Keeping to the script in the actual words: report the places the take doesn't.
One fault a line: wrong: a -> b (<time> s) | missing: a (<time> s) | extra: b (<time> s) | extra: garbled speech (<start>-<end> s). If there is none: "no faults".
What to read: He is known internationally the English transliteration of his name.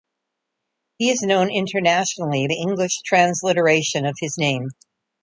no faults